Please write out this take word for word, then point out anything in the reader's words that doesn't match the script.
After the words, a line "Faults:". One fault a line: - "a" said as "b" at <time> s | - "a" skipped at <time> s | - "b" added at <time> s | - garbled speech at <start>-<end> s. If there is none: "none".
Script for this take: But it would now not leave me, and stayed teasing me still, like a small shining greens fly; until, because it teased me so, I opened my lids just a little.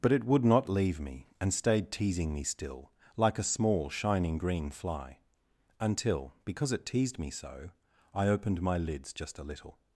But it would not leave me, and stayed teasing me still, like a small shining green fly; until, because it teased me so, I opened my lids just a little.
Faults:
- "now" skipped at 0.4 s
- "greens" said as "green" at 4.4 s